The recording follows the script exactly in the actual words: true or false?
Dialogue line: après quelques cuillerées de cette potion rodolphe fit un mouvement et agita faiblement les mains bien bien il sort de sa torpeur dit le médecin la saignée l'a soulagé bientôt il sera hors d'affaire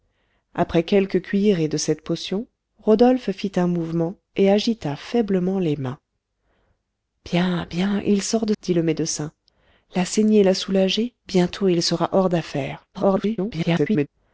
false